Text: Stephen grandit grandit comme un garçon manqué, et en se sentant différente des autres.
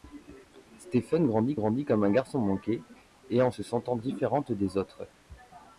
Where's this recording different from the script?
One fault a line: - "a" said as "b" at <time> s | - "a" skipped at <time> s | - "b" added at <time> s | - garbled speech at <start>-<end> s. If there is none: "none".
none